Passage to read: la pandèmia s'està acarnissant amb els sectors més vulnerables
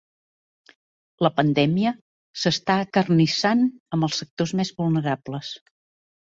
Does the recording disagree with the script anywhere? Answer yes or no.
no